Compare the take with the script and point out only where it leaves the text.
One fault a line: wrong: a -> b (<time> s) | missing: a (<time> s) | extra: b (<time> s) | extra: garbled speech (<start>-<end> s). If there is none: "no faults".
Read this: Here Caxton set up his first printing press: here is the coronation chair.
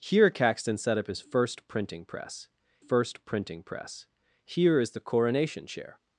extra: first printing press (2.8 s)